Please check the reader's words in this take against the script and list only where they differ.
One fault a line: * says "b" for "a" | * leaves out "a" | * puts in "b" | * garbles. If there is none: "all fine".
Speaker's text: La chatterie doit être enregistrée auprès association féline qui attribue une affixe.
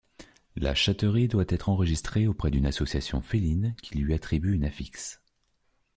* puts in "d'une"
* puts in "lui"